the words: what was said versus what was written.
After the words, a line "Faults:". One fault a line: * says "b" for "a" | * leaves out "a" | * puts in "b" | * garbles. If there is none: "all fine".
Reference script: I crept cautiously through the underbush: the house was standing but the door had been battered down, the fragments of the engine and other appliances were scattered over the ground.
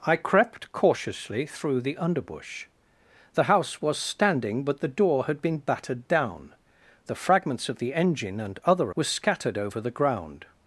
I crept cautiously through the underbush: the house was standing but the door had been battered down, the fragments of the engine and other were scattered over the ground.
Faults:
* leaves out "appliances"